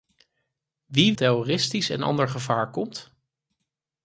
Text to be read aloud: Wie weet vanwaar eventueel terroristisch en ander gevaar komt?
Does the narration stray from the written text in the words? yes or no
yes